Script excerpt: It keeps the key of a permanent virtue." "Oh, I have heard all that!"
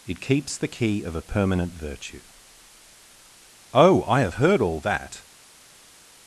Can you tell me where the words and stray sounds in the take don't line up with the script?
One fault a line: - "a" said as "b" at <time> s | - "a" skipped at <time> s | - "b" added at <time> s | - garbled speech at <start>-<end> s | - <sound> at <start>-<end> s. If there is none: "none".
none